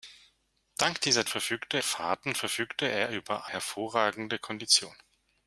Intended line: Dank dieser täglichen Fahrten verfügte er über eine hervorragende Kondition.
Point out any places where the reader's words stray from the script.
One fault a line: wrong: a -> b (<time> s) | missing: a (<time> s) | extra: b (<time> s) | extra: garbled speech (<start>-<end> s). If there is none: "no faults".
wrong: täglichen -> verfügte (1.3 s)
missing: eine (3.5 s)